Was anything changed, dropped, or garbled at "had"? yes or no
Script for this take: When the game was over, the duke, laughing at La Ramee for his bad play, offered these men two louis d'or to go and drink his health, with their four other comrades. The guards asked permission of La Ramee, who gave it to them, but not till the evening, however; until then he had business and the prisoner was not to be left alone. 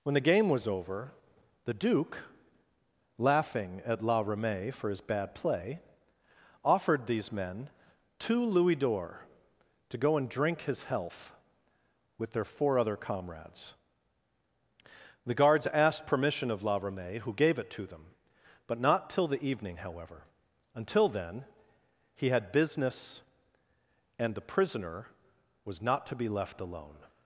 no